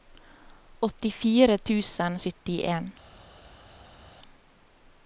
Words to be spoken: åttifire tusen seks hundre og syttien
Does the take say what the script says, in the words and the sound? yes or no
no